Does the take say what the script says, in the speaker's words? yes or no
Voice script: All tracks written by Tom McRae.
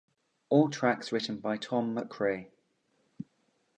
yes